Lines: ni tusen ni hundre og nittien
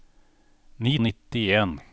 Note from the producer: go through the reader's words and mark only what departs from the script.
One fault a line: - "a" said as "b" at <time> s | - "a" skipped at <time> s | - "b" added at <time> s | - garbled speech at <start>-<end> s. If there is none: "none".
- "tusen ni hundre" skipped at 0.9 s